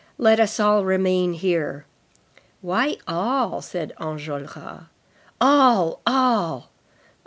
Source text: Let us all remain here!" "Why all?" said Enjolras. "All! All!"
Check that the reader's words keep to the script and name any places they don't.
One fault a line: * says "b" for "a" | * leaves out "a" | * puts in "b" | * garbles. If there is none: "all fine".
all fine